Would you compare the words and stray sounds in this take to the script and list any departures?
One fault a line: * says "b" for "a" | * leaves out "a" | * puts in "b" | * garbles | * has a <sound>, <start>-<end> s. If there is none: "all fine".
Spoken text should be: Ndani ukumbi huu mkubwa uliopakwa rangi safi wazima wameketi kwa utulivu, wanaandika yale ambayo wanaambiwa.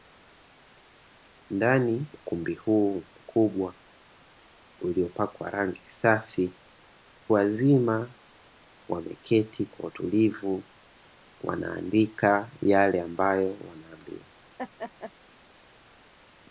* has a laugh, 14.6-15.1 s